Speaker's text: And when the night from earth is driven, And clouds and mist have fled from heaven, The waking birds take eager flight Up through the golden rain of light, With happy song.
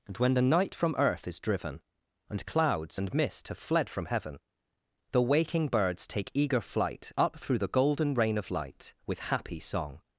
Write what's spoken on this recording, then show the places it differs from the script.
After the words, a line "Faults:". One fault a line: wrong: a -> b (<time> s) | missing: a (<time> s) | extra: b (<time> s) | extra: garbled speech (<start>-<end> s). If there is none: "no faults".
And when the night from earth is driven, And clouds and mist have fled from heaven, The waking birds take eager flight Up through the golden rain of light, With happy song.
Faults:
no faults